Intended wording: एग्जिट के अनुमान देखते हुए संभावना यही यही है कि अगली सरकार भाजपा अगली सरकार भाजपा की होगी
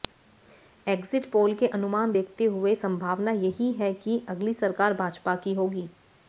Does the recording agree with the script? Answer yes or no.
no